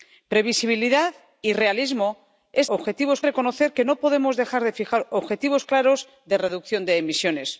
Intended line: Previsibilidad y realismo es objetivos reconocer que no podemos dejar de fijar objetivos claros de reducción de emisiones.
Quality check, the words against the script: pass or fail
pass